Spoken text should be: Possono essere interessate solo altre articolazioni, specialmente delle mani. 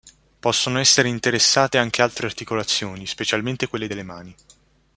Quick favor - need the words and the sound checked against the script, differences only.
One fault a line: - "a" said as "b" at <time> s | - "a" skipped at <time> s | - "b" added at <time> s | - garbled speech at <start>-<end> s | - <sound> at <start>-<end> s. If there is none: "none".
- "solo" said as "anche" at 1.8 s
- "quelle" added at 3.7 s